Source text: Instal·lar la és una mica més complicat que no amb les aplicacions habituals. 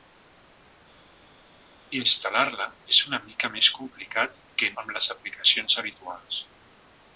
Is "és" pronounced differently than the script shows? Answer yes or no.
no